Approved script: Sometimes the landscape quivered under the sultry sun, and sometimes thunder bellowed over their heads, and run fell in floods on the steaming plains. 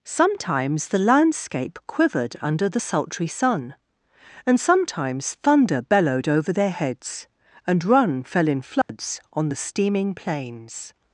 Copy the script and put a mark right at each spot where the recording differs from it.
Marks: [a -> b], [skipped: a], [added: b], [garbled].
Sometimes the landscape quivered under the sultry sun, and sometimes thunder bellowed over their heads, and run fell in floods on the steaming plains.